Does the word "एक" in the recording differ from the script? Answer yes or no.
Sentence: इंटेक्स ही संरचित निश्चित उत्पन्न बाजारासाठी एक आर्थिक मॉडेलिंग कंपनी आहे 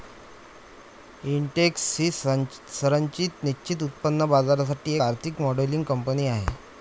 yes